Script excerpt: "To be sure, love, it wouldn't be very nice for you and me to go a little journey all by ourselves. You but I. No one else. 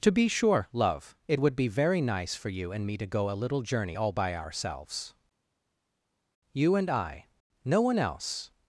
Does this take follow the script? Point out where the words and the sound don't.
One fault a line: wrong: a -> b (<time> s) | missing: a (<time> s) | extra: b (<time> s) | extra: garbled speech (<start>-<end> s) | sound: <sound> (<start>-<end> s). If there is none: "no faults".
wrong: wouldn't -> would (1.4 s)
wrong: but -> and (6.8 s)